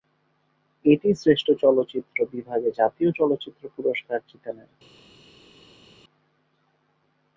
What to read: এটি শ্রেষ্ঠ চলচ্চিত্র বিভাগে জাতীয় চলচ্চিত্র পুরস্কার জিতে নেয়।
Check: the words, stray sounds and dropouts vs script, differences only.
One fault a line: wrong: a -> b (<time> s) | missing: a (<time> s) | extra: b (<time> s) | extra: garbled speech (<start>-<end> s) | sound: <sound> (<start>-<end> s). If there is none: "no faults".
no faults